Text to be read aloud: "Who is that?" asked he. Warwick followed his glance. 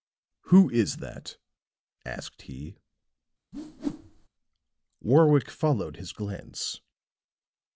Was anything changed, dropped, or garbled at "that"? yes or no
no